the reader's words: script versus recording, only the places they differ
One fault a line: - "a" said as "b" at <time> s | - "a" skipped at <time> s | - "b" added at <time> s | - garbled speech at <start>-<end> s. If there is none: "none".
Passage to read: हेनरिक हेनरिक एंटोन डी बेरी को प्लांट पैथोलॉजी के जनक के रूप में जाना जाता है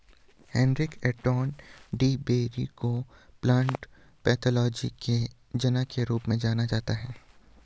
- "हेनरिक" skipped at 0.9 s